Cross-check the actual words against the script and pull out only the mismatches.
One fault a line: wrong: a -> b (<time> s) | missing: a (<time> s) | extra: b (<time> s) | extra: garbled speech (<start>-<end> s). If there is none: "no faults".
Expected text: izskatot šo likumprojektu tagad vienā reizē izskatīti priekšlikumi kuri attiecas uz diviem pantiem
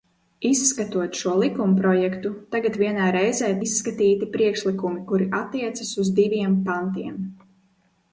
no faults